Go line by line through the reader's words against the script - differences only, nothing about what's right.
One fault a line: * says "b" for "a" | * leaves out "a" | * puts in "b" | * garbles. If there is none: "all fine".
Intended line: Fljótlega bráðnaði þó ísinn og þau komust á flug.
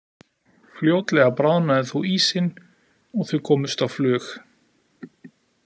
all fine